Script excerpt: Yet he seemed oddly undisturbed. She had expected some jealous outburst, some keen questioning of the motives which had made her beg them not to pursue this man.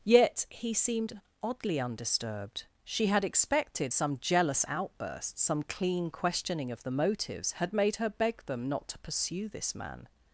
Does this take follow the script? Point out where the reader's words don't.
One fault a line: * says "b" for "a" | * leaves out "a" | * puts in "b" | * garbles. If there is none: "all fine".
* says "clean" for "keen"
* leaves out "which"